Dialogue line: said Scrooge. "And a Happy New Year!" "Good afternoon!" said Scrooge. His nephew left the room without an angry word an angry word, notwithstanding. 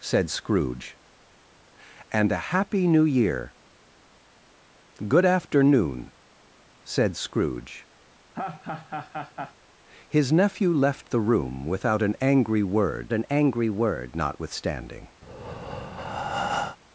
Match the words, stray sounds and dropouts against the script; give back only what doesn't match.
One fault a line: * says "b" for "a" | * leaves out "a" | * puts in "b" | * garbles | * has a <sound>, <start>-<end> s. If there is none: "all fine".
* has a laugh, 8.3-9.5 s
* has a breath, 15.2-16.8 s